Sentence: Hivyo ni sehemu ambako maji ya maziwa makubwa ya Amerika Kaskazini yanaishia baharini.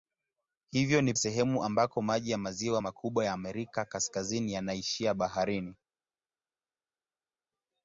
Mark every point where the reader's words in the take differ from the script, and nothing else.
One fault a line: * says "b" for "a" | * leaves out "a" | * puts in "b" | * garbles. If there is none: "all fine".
all fine